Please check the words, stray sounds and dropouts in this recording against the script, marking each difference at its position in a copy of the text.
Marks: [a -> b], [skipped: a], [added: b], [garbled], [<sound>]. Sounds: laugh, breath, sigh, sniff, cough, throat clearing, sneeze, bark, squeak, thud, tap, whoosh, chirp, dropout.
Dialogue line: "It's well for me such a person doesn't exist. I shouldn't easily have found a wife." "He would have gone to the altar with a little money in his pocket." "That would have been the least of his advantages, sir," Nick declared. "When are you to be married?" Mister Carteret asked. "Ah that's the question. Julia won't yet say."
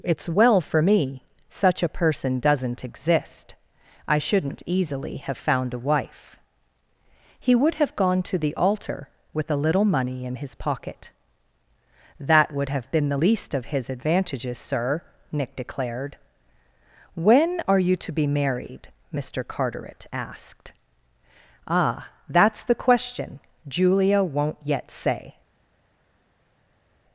"It's well for me such a person doesn't exist. I shouldn't easily have found a wife." "He would have gone to the altar with a little money in his pocket." "That would have been the least of his advantages, sir," Nick declared. "When are you to be married?" Mister Carteret asked. "Ah that's the question. Julia won't yet say."